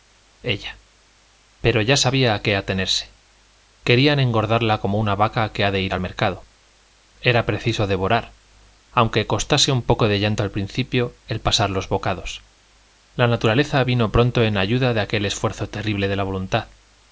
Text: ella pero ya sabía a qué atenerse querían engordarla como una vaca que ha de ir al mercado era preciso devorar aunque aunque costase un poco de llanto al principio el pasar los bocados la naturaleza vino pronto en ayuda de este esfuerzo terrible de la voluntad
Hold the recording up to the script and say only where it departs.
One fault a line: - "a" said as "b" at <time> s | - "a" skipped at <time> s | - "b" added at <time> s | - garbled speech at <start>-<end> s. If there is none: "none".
- "aunque" skipped at 9.2 s
- "este" said as "aquel" at 15.0 s